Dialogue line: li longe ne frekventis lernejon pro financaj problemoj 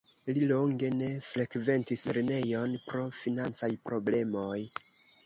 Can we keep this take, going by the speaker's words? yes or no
yes